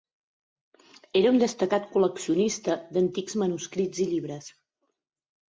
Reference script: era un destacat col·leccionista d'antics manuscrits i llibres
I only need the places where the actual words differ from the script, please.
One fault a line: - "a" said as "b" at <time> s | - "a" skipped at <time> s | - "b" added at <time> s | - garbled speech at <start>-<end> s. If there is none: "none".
none